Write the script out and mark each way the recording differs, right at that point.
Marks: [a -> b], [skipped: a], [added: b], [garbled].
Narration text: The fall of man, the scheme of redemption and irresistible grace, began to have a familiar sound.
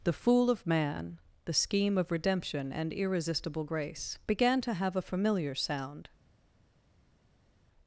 The [fall -> fool] of man, the scheme of redemption and irresistible grace, began to have a familiar sound.